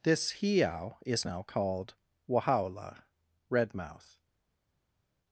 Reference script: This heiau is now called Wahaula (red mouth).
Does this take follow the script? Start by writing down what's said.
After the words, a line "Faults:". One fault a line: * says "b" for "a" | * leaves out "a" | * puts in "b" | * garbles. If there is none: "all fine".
This heiau is now called Wahaula (red mouth).
Faults:
all fine